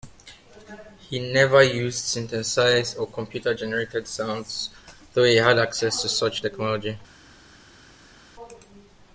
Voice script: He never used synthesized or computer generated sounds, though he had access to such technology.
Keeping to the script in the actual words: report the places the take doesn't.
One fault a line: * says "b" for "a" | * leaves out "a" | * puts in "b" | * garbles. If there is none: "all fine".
all fine